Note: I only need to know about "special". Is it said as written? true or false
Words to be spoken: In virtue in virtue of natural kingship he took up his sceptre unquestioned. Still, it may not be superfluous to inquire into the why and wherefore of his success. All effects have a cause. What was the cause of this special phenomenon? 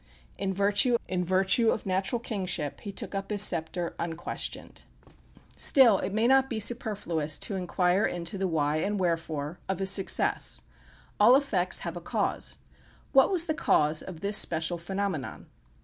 true